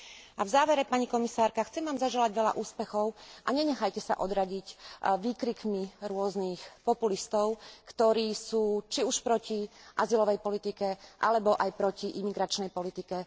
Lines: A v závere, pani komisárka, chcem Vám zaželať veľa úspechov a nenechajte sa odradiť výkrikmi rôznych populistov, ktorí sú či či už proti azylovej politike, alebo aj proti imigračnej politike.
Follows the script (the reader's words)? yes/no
no